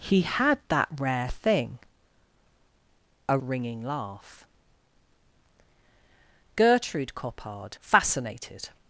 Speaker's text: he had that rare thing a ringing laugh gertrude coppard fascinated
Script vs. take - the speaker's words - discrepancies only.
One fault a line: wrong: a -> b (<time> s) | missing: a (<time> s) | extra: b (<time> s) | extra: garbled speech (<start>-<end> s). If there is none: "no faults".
no faults